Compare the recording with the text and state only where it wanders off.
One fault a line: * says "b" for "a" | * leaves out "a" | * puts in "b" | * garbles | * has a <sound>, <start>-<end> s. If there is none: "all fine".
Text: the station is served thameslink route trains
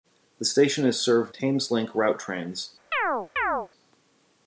* has a chirp, 2.9-3.7 s